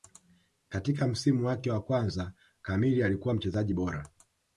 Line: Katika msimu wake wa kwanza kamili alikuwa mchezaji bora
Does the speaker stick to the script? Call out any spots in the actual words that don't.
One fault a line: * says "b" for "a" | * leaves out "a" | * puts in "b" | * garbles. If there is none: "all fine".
all fine